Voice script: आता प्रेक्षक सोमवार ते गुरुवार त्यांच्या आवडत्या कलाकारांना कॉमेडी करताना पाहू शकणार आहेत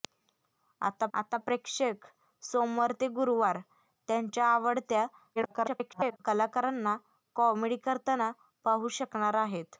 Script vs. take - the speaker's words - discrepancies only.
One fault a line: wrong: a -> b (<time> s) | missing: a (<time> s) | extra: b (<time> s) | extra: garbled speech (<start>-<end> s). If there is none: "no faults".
extra: आता (1.1 s)
extra: garbled speech (5.3-6.2 s)